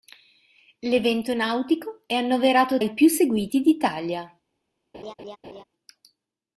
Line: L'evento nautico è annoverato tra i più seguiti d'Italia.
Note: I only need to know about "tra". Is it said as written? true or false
false